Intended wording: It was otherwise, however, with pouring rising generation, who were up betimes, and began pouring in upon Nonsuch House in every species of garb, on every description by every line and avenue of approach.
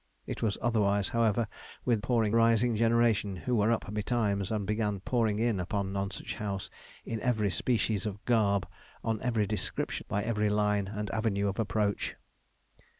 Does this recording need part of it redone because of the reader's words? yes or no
no